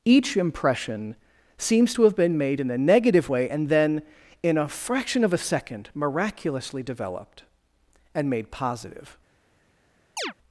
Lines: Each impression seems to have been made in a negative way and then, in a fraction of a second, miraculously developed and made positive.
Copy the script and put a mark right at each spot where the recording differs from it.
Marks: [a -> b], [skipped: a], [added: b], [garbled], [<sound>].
Each impression seems to have been made in a negative way and then, in a fraction of a second, miraculously developed and made positive. [chirp]